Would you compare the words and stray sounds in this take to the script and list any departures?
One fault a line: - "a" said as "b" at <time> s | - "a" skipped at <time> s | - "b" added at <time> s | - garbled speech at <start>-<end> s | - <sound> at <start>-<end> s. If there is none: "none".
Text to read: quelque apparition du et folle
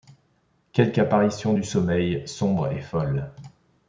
- "sommeil sombre" added at 1.6 s